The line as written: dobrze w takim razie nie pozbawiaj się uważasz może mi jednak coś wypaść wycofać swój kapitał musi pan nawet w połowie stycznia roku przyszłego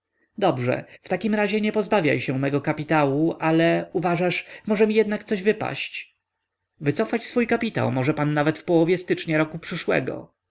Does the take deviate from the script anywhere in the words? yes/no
yes